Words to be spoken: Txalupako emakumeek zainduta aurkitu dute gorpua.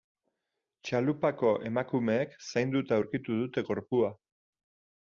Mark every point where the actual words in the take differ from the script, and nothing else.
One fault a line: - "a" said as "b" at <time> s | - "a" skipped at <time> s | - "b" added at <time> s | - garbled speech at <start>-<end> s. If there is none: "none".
none